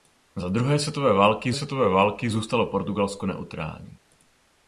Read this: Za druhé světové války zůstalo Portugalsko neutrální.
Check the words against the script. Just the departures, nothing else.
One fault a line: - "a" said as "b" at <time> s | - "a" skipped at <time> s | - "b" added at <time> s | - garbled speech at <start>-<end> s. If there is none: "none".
- "světové války" added at 1.5 s